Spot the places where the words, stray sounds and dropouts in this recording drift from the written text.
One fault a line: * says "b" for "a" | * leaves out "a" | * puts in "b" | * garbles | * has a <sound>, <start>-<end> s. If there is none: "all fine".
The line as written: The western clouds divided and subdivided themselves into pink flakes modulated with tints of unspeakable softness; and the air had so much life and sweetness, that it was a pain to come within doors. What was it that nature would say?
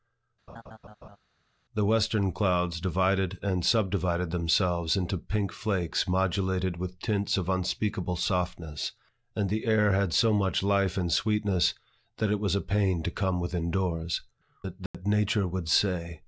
* has a laugh, 0.5-1.2 s
* leaves out "What was"
* has a dropout, 14.9-14.9 s